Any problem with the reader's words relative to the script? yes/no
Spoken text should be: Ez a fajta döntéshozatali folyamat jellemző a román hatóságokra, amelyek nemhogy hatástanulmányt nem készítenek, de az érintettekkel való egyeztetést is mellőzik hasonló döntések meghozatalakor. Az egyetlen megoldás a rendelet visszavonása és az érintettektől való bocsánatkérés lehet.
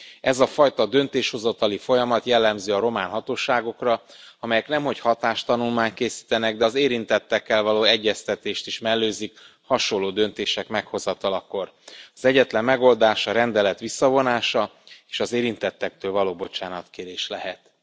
yes